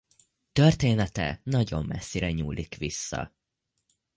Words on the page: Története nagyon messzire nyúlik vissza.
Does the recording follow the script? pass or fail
pass